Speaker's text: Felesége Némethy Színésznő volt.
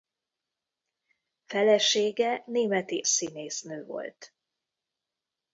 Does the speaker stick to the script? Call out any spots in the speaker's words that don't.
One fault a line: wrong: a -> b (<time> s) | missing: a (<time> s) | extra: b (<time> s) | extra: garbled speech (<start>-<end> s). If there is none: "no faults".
no faults